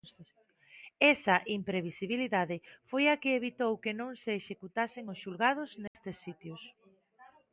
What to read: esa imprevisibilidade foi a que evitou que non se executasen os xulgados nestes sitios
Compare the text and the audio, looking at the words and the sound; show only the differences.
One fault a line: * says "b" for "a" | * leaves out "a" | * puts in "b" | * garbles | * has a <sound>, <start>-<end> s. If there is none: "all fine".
* has a dropout, 5.9-5.9 s